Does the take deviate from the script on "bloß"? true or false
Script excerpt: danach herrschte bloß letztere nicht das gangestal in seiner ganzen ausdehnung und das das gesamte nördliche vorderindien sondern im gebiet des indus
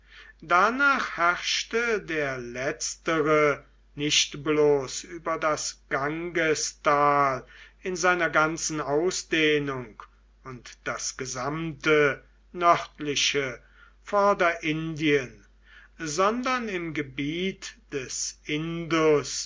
true